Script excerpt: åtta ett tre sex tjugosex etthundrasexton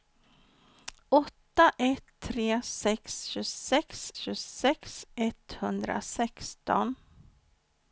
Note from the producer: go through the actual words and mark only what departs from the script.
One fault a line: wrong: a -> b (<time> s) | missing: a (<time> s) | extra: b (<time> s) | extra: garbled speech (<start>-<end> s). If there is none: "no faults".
extra: tjugosex (4.1 s)